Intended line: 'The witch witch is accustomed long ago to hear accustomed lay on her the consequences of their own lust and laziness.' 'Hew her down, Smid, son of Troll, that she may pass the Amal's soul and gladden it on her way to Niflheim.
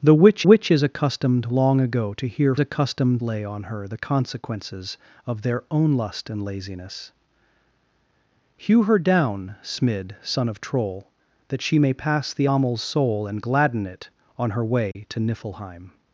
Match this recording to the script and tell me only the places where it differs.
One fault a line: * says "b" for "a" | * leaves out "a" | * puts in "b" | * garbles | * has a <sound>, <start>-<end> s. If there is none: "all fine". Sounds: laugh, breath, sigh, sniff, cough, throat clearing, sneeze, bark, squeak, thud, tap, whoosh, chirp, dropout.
* has a dropout, 14.9-15.0 s